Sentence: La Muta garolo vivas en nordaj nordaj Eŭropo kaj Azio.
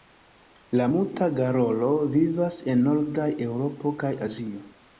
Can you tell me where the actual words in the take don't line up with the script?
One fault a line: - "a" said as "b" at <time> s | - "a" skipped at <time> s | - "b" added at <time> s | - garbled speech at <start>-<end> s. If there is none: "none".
- "nordaj" skipped at 3.3 s